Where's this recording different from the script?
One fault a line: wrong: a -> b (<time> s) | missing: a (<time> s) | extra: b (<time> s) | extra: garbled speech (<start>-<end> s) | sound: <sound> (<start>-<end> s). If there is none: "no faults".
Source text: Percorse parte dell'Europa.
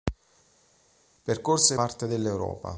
no faults